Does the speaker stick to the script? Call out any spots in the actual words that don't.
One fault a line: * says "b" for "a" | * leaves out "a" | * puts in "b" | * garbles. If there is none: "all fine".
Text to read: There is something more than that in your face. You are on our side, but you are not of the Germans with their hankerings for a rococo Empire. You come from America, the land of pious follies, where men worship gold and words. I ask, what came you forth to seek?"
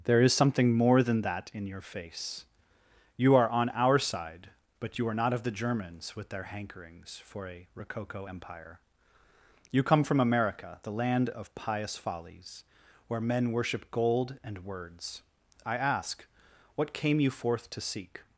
all fine